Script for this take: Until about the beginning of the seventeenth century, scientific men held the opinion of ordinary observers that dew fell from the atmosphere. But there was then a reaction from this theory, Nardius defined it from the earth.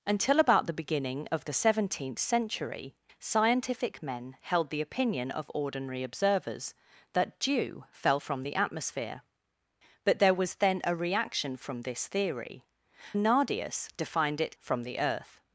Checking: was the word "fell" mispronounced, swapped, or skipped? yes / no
no